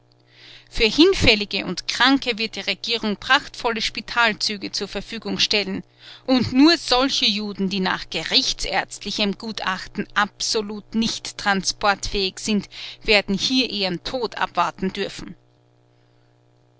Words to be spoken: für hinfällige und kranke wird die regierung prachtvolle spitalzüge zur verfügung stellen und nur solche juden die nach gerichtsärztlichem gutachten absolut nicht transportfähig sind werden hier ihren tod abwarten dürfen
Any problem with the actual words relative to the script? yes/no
no